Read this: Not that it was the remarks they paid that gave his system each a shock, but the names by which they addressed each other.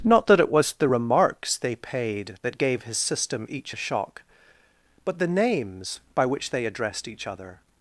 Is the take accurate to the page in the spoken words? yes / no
yes